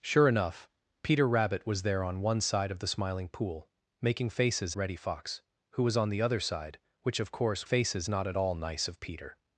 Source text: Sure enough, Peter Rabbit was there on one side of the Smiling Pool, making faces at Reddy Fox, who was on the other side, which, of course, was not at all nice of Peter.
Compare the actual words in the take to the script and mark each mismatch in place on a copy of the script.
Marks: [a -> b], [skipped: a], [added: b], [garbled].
Sure enough, Peter Rabbit was there on one side of the Smiling Pool, making faces [skipped: at] Reddy Fox, who was on the other side, which, of course, [was -> faces] not at all nice of Peter.